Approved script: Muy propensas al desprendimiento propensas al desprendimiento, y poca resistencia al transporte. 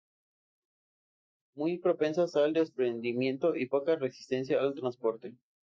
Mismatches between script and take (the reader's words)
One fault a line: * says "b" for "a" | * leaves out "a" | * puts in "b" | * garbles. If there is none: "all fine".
* leaves out "propensas al desprendimiento"